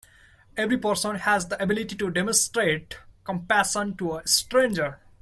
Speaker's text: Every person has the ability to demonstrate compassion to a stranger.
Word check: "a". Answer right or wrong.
right